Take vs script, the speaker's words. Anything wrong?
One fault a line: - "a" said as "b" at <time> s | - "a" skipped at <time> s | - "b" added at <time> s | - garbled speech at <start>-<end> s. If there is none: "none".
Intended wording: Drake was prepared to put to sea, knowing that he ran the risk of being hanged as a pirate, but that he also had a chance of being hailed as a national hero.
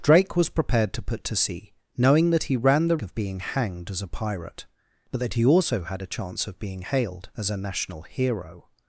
- "risk" skipped at 3.0 s